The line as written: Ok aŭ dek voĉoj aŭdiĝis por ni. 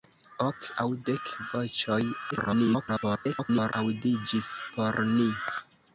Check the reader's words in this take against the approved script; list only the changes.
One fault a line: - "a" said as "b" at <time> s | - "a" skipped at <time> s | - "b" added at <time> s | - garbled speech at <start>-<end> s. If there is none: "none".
- garbled speech at 2.3-3.7 s